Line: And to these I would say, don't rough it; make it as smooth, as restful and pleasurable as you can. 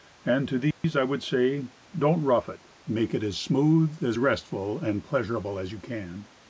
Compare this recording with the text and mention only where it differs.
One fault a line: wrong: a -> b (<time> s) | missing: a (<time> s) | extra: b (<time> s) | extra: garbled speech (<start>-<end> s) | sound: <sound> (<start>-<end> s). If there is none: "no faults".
sound: dropout (0.7-0.8 s)